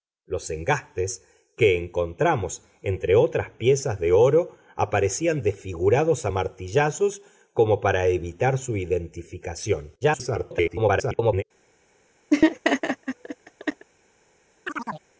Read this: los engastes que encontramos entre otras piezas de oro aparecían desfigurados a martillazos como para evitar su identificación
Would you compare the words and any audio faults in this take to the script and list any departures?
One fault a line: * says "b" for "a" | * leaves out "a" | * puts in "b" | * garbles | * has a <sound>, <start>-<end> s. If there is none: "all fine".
* garbles
* has a laugh, 12.3-13.9 s
* has a chirp, 14.7-15.1 s